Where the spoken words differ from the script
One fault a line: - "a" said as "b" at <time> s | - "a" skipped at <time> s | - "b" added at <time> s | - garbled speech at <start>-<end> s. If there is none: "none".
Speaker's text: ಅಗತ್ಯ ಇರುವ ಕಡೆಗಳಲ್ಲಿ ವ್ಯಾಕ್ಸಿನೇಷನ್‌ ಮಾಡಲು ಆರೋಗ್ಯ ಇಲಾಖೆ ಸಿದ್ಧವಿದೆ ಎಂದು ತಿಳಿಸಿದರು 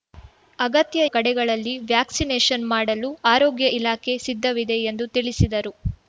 - "ಇರುವ" skipped at 1.0 s